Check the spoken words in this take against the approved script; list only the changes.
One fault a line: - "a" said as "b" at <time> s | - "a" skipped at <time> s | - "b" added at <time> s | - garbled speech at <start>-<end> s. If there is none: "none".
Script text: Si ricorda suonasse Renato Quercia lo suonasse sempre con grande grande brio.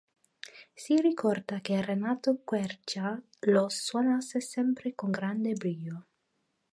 - "suonasse" said as "che" at 1.6 s
- "grande" skipped at 5.5 s